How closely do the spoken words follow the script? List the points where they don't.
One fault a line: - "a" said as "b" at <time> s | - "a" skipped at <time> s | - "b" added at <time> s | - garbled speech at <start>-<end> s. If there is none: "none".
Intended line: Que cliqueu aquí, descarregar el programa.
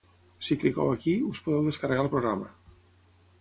- "Que" said as "Si" at 0.5 s
- "us podeu" added at 1.3 s